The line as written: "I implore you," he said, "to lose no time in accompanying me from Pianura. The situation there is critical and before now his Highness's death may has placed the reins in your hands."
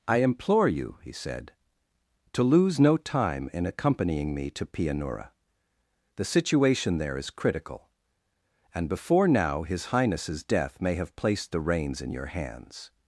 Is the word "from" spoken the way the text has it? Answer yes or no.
no